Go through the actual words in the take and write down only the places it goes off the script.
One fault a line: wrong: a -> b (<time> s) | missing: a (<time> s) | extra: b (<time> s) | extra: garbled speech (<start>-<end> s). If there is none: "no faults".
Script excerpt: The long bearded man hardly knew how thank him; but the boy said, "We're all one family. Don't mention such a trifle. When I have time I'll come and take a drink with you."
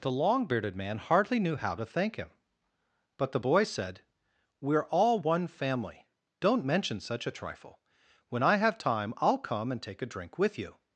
extra: to (1.8 s)